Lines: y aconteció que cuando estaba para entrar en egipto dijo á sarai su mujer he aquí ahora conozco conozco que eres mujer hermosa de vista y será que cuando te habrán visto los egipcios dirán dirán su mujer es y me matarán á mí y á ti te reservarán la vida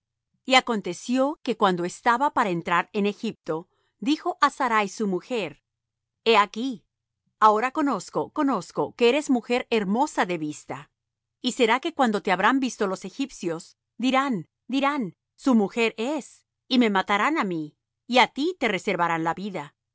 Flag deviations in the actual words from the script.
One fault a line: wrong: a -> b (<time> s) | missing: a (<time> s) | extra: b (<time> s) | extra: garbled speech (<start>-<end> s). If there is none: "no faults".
no faults